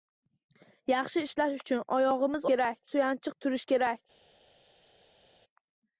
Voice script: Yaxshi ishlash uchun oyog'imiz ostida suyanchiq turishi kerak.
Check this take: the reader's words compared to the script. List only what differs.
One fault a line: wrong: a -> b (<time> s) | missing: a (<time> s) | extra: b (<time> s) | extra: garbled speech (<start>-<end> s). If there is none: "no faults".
wrong: ostida -> kerak (2.5 s)